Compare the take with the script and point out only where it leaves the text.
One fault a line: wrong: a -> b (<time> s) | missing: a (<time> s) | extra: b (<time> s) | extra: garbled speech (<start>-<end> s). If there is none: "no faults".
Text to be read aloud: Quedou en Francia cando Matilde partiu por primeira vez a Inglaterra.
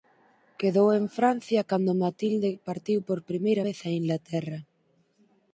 no faults